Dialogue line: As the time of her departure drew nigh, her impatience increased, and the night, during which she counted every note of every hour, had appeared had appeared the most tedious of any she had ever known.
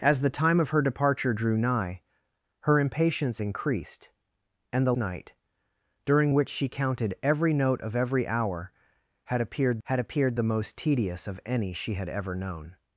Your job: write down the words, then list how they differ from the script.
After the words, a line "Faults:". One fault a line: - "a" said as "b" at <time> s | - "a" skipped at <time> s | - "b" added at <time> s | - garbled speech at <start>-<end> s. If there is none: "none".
As the time of her departure drew nigh, her impatience increased, and the night, during which she counted every note of every hour, had appeared had appeared the most tedious of any she had ever known.
Faults:
none